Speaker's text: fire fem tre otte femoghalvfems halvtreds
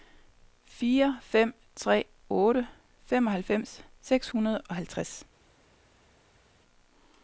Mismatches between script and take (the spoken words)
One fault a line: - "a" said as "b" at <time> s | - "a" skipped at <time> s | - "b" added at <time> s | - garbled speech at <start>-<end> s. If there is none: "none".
- "seks hundrede og" added at 4.0 s